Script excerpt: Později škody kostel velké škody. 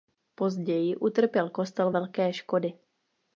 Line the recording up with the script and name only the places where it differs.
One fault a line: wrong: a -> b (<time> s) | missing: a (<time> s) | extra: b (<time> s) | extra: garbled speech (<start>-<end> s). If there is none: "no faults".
wrong: škody -> utrpěl (0.9 s)